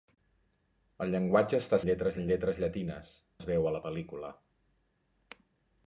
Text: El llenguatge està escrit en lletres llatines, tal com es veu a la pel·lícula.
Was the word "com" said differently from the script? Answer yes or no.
yes